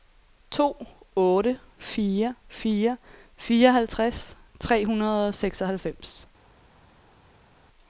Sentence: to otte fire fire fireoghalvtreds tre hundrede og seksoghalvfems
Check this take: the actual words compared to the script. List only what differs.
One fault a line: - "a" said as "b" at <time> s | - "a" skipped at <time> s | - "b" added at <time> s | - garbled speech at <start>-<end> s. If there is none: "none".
none